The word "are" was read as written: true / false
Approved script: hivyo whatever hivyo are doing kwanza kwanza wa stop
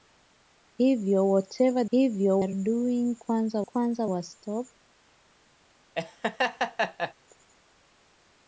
true